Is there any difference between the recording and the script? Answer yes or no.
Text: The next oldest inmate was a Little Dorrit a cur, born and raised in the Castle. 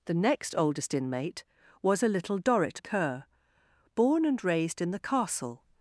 no